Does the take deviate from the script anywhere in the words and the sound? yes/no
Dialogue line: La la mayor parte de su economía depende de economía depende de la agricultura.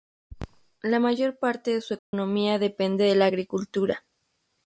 yes